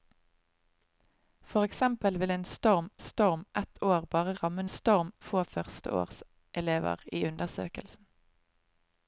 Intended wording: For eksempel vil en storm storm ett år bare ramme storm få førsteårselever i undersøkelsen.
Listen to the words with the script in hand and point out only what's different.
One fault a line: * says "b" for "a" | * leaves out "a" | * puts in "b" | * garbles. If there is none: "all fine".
all fine